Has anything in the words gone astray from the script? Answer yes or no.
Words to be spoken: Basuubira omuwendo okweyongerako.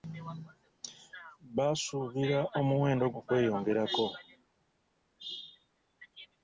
no